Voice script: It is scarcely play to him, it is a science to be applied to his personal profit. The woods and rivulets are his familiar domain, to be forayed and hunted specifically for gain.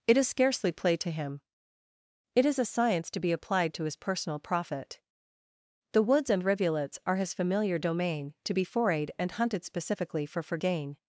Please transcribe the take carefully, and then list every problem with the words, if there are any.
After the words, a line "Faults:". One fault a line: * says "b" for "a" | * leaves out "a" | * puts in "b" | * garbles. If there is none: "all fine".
It is scarcely play to him, it is a science to be applied to his personal profit. The woods and rivulets are his familiar domain, to be forayed and hunted specifically for for gain.
Faults:
* puts in "for"